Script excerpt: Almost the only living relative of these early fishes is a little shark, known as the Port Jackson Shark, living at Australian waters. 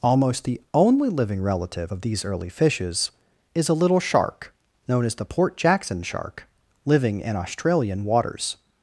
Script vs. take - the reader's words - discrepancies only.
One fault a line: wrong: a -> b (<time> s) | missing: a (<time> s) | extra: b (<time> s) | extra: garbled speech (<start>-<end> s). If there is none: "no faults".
wrong: at -> in (7.2 s)